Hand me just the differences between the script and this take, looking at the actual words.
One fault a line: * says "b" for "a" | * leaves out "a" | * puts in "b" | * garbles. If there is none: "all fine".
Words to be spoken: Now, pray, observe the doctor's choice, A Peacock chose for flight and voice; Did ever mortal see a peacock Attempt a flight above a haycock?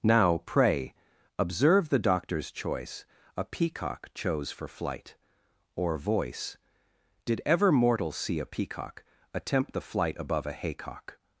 * says "or" for "and"
* says "the" for "a"